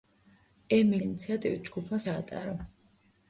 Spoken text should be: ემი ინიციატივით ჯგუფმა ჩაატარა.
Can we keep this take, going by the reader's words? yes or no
yes